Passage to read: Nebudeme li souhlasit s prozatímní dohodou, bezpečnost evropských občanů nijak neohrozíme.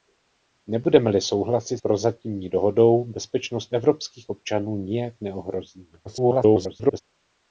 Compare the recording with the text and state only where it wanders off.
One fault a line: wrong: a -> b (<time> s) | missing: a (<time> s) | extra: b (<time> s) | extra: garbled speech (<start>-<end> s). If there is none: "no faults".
missing: s (1.8 s)
extra: garbled speech (6.0-7.0 s)